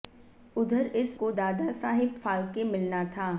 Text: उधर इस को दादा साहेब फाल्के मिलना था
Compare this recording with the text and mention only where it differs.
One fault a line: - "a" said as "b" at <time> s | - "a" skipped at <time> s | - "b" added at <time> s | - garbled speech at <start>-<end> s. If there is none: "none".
none